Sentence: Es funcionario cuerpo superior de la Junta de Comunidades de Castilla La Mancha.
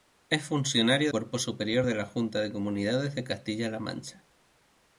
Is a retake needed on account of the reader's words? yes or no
no